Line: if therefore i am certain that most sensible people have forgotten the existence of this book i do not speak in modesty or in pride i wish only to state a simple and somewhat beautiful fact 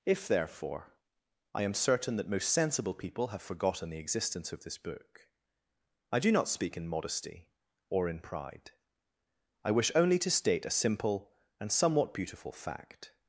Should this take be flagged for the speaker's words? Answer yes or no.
no